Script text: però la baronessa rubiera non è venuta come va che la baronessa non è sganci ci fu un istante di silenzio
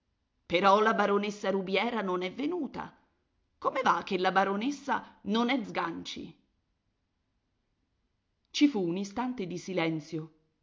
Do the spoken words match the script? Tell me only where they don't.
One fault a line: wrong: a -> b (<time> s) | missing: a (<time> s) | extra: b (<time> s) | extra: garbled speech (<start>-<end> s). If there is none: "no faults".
no faults